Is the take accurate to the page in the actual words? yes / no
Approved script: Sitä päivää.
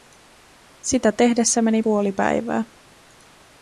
no